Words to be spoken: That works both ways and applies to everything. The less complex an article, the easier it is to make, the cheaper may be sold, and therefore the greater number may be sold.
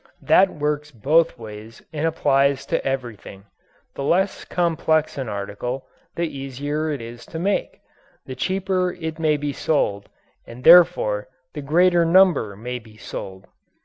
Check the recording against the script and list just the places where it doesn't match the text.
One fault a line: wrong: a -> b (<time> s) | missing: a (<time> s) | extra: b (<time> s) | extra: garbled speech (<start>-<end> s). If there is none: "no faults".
extra: it (8.9 s)